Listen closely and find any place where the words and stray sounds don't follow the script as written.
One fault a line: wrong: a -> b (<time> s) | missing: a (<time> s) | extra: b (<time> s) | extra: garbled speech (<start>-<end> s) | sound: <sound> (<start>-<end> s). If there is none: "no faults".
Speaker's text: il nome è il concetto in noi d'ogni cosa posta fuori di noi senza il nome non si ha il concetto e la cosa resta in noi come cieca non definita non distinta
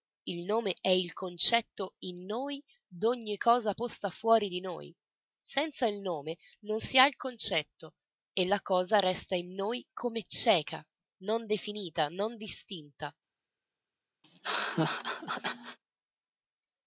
sound: laugh (14.2-15.8 s)